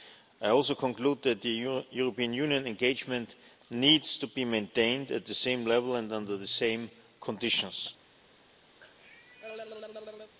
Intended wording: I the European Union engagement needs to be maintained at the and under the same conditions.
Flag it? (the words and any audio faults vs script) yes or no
yes